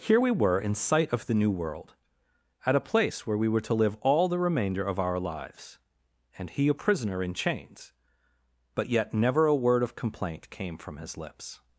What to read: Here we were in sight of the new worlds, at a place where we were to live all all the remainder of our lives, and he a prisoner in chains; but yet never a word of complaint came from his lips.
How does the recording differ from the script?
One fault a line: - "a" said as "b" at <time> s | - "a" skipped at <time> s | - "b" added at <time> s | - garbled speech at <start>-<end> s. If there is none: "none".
- "worlds" said as "world" at 1.5 s
- "all" skipped at 4.3 s